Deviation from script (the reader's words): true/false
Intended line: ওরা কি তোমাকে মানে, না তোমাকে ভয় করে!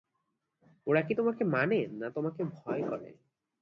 false